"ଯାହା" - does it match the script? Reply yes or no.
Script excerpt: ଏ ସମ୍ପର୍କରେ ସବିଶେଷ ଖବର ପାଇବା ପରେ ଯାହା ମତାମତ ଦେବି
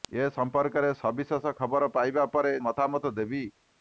no